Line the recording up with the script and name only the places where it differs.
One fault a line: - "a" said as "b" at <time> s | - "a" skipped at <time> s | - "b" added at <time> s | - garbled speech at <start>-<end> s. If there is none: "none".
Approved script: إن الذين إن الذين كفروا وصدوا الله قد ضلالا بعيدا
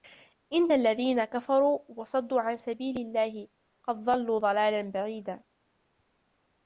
- "إن الذين كفروا وصدوا" said as "كفروا وصدوا عن سبيل" at 1.3 s
- "ضلوا" added at 4.0 s